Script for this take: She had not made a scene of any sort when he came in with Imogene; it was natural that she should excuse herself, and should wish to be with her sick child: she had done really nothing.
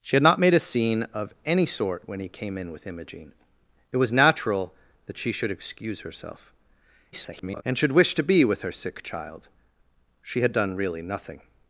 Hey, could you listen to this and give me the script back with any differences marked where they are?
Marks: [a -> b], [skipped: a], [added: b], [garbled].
She had not made a scene of any sort when he came in with Imogene; it was natural that she should excuse herself, [garbled] and should wish to be with her sick child: she had done really nothing.